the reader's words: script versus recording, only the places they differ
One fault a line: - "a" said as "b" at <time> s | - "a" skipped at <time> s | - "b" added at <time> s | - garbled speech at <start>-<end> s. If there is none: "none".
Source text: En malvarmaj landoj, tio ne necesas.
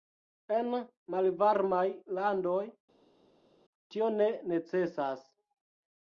none